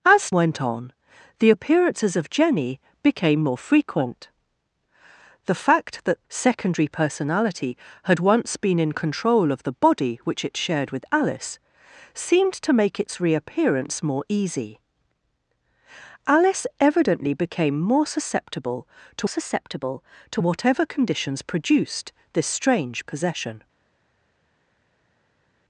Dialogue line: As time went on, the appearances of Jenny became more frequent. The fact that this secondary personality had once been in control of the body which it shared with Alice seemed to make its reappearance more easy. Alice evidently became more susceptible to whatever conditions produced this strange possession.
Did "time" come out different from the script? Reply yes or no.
yes